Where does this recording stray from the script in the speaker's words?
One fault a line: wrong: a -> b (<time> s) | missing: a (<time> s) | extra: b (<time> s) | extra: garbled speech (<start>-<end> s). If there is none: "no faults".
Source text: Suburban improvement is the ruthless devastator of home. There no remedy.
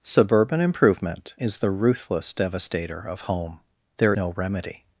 no faults